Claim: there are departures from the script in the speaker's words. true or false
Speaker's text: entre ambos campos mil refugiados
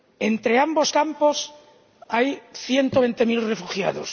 true